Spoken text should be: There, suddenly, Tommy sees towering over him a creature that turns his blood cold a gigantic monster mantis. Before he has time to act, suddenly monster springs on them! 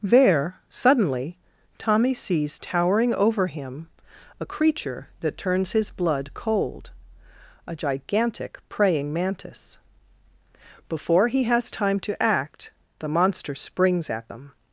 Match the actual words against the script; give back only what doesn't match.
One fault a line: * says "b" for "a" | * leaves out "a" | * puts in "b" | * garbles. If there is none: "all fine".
* says "praying" for "monster"
* says "the" for "suddenly"
* says "at" for "on"